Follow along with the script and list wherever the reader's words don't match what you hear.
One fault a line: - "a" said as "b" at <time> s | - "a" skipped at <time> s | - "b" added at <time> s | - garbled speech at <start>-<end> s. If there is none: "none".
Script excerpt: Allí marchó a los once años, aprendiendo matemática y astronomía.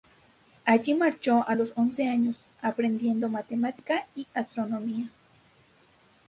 none